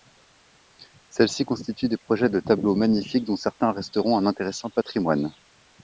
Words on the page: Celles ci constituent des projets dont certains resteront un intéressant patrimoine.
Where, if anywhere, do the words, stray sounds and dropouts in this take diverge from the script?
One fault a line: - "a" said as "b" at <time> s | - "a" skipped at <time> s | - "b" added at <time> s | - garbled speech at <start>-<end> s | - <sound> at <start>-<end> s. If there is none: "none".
- "de tableaux magnifiques" added at 2.3 s